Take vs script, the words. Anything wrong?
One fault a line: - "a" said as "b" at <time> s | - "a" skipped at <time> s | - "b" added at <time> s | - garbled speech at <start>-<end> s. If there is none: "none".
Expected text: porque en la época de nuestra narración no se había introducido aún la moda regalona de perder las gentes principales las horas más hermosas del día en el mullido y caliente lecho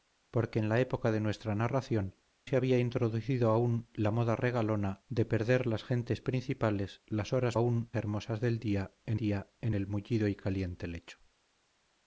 - "no" skipped at 2.2 s
- "más" said as "aún" at 7.5 s
- "día en" added at 9.1 s